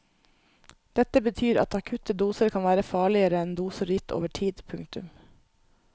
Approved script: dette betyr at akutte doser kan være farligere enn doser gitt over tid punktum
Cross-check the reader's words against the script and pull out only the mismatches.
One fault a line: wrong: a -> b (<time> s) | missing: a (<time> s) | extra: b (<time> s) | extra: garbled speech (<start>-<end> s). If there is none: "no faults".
no faults